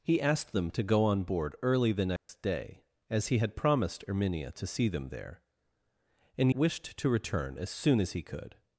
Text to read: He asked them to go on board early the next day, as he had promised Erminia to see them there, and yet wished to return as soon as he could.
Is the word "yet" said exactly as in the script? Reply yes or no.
no